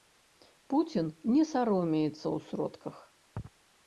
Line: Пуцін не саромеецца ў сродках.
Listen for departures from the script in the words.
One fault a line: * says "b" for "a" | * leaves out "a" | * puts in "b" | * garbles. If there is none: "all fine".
all fine